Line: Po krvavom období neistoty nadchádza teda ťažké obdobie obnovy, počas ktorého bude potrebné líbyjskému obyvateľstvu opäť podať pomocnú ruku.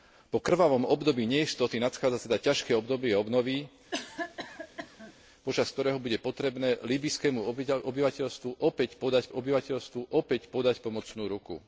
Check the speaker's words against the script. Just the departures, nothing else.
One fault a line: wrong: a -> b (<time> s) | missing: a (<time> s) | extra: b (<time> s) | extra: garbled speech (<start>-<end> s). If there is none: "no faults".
extra: obyvateľstvu opäť podať (9.3 s)